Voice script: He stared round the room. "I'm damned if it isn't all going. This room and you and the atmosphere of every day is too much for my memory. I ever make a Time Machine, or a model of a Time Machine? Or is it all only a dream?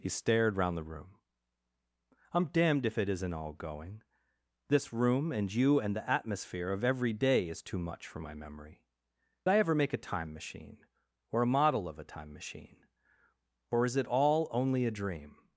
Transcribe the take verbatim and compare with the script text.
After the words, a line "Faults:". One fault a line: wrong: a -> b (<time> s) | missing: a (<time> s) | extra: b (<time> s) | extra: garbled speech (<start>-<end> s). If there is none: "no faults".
He stared round the room. "I'm damned if it isn't all going. This room and you and the atmosphere of every day is too much for my memory. I ever make a Time Machine, or a model of a Time Machine? Or is it all only a dream?
Faults:
no faults